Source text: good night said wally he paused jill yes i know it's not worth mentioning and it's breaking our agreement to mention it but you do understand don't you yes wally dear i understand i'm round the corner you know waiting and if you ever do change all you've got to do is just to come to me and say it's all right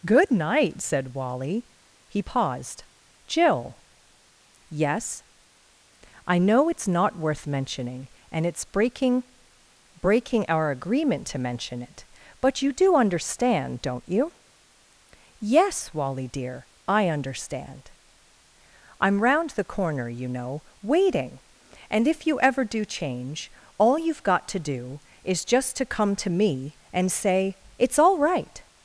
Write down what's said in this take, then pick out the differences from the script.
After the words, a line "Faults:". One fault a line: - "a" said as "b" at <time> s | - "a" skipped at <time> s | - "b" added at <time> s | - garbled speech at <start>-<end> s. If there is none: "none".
good night said wally he paused jill yes i know it's not worth mentioning and it's breaking breaking our agreement to mention it but you do understand don't you yes wally dear i understand i'm round the corner you know waiting and if you ever do change all you've got to do is just to come to me and say it's all right
Faults:
- "breaking" added at 10.0 s